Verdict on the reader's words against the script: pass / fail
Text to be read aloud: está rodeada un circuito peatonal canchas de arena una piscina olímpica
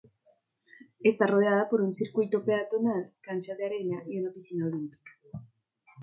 fail